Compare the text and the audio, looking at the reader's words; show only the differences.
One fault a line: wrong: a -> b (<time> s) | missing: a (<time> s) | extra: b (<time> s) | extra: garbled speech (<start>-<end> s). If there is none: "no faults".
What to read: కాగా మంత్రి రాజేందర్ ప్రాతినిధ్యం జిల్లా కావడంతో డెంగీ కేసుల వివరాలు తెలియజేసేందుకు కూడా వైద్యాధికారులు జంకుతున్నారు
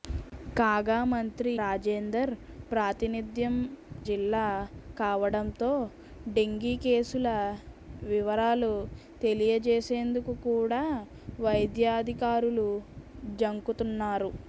no faults